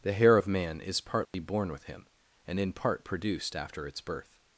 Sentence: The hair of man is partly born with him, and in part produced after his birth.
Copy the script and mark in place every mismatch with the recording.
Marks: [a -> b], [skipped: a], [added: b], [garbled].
The hair of man is partly born with him, and in part produced after [his -> its] birth.